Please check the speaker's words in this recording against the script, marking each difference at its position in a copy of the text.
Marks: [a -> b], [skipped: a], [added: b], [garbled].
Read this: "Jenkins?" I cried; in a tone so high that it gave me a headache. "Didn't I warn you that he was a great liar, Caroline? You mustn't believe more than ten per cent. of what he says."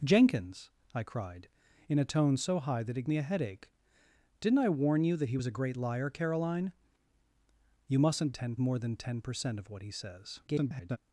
"Jenkins?" I cried; in a tone so high that it [skipped: gave] me a headache. "Didn't I warn you that he was a great liar, Caroline? You mustn't [believe -> ten] more than ten per cent. of what he says." [garbled]